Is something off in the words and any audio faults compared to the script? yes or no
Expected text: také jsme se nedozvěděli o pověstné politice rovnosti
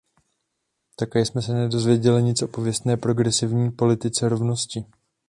yes